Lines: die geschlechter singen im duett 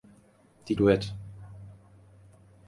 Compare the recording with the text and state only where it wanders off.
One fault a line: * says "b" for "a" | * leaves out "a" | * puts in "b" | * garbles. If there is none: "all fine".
* leaves out "geschlechter singen im"